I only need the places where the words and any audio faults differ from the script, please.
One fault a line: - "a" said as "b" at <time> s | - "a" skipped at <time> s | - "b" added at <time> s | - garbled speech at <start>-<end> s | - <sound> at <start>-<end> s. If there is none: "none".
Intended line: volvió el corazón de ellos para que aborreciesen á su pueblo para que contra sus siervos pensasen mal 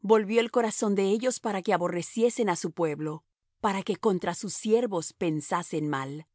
none